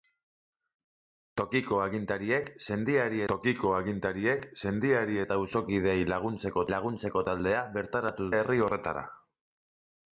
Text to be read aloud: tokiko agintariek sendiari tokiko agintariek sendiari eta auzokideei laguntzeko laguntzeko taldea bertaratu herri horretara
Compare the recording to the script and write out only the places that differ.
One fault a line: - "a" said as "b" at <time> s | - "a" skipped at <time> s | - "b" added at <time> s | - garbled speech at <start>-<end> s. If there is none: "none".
none